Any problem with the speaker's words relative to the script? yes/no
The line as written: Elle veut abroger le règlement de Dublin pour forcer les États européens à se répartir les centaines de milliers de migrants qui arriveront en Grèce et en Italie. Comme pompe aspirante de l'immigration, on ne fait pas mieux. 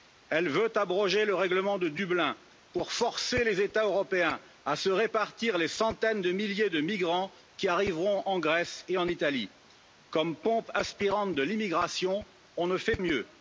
yes